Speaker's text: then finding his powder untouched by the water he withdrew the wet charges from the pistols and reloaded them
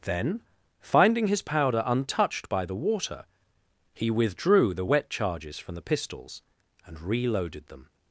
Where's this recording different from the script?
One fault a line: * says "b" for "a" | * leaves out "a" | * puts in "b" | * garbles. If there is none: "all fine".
all fine